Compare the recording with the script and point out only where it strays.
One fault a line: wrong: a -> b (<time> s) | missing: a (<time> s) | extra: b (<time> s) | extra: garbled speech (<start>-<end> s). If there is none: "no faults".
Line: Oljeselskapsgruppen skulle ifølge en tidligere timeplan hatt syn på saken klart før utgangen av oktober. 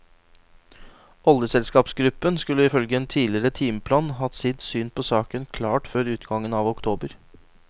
extra: sitt (4.4 s)